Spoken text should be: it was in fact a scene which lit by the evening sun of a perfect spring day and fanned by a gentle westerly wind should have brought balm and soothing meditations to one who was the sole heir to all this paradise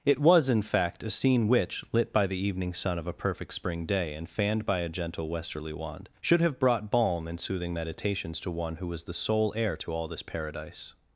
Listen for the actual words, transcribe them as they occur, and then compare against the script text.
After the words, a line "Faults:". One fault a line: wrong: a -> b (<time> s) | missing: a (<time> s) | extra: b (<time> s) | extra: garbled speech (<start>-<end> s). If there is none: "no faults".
it was in fact a scene which lit by the evening sun of a perfect spring day and fanned by a gentle westerly wand should have brought balm and soothing meditations to one who was the sole heir to all this paradise
Faults:
wrong: wind -> wand (5.7 s)